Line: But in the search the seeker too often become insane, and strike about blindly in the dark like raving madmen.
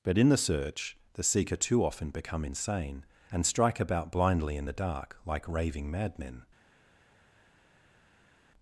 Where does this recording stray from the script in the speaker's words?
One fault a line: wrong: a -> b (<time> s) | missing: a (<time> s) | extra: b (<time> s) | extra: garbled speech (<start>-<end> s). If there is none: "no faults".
no faults